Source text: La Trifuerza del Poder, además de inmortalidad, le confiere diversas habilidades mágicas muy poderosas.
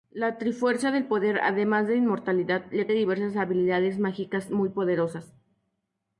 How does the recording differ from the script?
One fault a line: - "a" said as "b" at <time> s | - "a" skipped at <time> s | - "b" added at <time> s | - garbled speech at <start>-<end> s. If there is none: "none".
- "confiere" skipped at 2.9 s